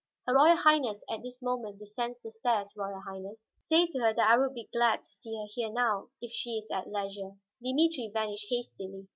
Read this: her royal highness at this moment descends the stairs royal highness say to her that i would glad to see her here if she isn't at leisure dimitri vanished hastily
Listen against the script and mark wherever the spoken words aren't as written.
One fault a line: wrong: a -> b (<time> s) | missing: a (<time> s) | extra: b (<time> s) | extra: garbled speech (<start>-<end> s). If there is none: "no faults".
extra: be (4.5 s)
extra: now (5.7 s)
wrong: isn't -> is (6.6 s)